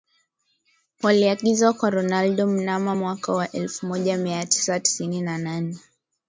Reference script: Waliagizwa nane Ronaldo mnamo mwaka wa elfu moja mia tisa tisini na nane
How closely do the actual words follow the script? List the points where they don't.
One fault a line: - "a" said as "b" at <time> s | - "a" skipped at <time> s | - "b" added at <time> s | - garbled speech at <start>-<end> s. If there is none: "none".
- "nane" said as "kwa" at 1.7 s